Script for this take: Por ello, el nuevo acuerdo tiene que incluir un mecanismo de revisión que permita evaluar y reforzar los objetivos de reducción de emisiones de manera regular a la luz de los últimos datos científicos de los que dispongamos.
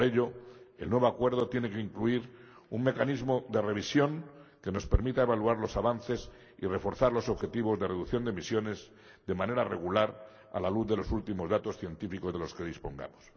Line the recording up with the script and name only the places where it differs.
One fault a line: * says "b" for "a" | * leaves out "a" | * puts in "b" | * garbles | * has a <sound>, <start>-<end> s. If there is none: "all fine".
* puts in "nos"
* puts in "los avances"